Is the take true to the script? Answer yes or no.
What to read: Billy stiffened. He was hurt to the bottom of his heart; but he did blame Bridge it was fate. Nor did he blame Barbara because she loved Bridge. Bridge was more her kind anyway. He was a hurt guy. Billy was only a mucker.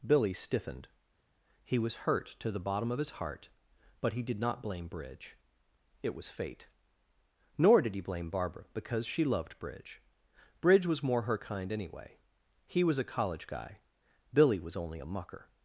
no